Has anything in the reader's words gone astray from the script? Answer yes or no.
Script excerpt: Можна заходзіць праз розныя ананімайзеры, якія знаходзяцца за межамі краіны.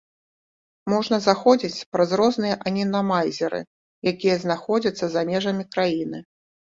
no